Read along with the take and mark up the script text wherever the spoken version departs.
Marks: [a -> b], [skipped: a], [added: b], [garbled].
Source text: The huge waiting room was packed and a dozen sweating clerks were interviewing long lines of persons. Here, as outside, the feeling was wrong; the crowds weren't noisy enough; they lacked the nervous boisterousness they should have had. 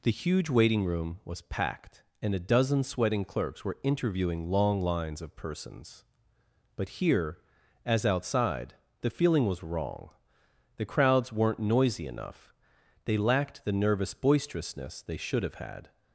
The huge waiting room was packed and a dozen sweating clerks were interviewing long lines of persons. [added: But] Here, as outside, the feeling was wrong; the crowds weren't noisy enough; they lacked the nervous boisterousness they should have had.